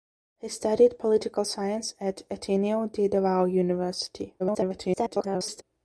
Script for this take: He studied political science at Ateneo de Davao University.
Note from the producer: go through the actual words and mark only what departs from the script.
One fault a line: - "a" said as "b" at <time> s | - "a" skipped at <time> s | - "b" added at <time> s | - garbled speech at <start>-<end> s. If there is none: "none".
- garbled speech at 4.4-5.6 s